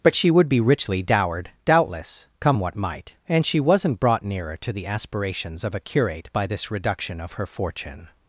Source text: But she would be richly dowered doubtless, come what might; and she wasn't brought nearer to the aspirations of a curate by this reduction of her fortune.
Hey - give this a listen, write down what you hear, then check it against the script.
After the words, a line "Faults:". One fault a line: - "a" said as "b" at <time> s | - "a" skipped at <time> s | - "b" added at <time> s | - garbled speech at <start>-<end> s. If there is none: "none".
But she would be richly dowered doubtless, come what might; and she wasn't brought nearer to the aspirations of a curate by this reduction of her fortune.
Faults:
none